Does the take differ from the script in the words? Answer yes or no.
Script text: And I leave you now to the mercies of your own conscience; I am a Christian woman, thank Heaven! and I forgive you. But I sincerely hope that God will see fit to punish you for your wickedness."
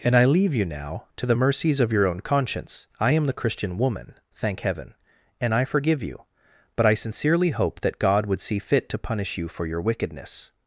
yes